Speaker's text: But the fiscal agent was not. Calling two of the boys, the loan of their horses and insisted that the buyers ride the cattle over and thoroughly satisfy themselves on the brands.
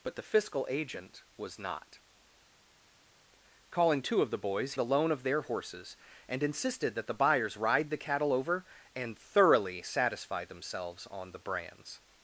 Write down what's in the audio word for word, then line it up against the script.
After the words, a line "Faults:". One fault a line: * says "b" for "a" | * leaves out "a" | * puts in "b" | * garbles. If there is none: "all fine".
But the fiscal agent was not. Calling two of the boys, the loan of their horses and insisted that the buyers ride the cattle over and thoroughly satisfy themselves on the brands.
Faults:
all fine